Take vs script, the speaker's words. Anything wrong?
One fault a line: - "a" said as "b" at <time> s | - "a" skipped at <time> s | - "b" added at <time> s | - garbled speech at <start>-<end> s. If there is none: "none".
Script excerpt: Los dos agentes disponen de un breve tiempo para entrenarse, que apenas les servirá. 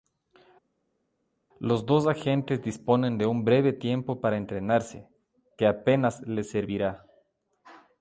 none